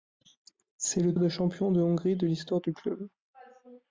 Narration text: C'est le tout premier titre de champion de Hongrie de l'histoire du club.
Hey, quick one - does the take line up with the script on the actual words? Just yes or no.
no